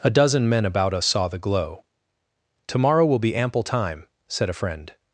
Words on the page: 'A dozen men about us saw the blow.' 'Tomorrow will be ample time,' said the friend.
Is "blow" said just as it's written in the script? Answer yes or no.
no